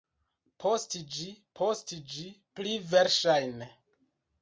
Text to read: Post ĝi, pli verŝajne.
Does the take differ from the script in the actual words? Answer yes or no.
yes